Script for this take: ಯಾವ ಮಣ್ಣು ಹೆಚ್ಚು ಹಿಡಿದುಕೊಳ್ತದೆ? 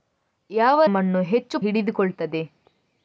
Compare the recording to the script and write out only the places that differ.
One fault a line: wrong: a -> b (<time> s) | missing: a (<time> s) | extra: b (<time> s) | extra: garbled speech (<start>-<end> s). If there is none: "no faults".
no faults